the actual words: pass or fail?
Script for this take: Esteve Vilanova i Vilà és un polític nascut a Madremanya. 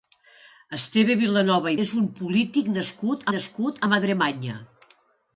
fail